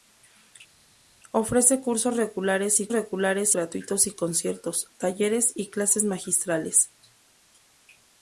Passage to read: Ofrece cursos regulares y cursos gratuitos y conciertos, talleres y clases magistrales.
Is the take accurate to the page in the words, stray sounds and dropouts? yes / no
no